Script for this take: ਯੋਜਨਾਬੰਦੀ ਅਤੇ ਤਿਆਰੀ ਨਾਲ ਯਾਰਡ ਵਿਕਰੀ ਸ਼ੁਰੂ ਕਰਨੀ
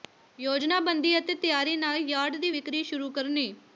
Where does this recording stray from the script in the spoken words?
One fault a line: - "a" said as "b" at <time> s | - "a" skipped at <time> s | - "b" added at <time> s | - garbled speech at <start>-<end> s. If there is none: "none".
- "ਦੀ" added at 2.4 s